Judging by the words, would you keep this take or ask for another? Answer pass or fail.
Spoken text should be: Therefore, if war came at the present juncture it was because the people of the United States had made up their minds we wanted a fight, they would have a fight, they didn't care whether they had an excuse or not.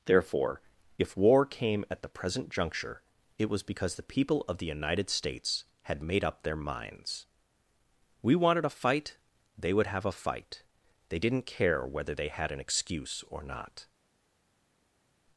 pass